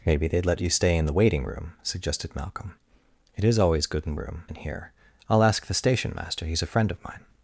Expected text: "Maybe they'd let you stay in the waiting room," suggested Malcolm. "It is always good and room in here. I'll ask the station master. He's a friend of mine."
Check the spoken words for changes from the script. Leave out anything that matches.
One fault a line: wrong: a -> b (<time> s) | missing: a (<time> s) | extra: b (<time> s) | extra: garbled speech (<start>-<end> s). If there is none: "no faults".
no faults